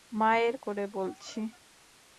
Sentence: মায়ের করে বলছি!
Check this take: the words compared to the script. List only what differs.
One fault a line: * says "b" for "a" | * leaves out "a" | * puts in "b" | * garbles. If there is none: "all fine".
all fine